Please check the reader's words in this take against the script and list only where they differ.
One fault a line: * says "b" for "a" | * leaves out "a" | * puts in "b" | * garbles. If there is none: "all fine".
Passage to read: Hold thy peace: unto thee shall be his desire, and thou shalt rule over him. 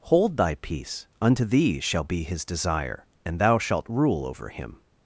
all fine